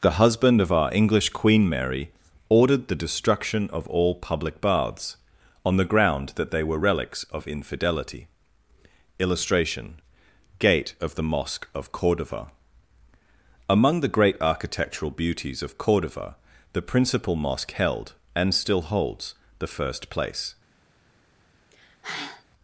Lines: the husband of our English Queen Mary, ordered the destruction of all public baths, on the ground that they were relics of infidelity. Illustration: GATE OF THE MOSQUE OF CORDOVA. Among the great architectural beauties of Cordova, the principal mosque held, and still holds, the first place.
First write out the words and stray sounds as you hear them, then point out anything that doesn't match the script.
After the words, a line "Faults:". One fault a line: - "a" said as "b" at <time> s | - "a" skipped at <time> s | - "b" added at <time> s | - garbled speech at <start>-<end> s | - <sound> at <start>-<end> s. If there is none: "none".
the husband of our English Queen Mary, ordered the destruction of all public baths, on the ground that they were relics of infidelity. Illustration: GATE OF THE MOSQUE OF CORDOVA. Among the great architectural beauties of Cordova, the principal mosque held, and still holds, the first place.
Faults:
- sigh at 21.7-22.4 s